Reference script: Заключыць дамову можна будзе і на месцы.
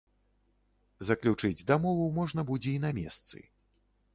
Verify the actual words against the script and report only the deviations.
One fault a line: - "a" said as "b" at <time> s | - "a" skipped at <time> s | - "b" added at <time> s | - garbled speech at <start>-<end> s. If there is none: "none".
none